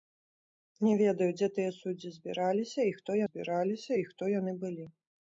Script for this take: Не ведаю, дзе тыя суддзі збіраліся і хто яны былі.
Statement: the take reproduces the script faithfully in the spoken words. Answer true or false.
false